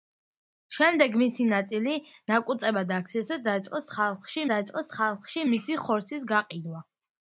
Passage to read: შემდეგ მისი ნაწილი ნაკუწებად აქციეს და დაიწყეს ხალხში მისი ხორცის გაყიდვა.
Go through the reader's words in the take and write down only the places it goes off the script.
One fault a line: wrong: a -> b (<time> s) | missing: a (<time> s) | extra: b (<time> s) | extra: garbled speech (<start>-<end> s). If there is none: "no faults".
extra: დაიწყეს ხალხში (4.5 s)